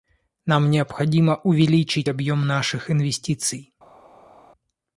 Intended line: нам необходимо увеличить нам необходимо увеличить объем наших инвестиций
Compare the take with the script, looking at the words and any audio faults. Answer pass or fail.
fail